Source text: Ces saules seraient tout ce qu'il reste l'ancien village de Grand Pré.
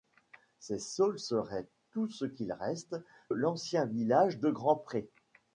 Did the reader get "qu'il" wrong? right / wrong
right